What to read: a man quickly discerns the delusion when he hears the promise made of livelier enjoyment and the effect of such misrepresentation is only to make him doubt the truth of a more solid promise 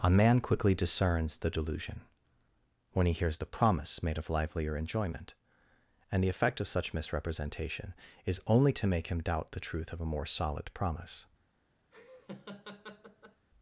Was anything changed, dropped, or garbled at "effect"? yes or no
no